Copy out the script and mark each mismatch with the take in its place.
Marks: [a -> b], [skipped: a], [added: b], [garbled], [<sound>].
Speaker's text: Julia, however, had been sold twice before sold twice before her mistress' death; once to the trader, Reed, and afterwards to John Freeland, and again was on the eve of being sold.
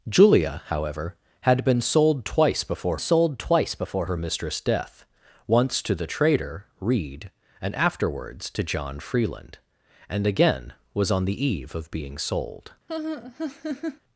Julia, however, had been sold twice before sold twice before her mistress' death; once to the trader, Reed, and afterwards to John Freeland, and again was on the eve of being sold. [laugh]